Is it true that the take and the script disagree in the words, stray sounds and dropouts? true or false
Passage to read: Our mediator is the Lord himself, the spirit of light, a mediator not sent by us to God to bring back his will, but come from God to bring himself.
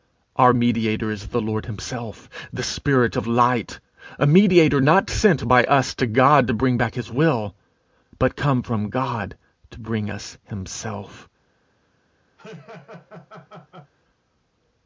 true